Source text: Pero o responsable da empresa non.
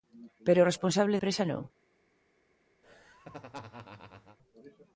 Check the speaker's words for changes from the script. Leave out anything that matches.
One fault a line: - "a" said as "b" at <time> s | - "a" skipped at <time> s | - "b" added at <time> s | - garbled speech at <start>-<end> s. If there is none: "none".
- "da" skipped at 1.2 s